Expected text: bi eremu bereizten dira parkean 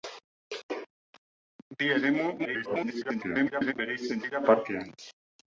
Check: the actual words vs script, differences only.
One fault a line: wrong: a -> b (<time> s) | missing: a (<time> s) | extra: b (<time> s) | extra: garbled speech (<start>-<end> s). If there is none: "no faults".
extra: garbled speech (2.4-3.7 s)